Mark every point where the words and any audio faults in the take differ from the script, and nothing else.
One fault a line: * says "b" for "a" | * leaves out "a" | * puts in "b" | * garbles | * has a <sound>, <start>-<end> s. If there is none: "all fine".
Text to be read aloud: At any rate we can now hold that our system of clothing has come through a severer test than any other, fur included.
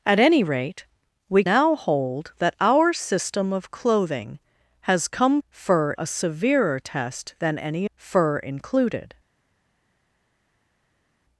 * leaves out "can"
* says "fur" for "through"
* leaves out "other"